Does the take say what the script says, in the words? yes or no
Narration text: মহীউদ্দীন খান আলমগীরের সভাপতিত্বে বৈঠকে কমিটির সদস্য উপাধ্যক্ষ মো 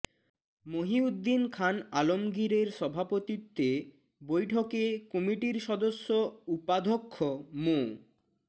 yes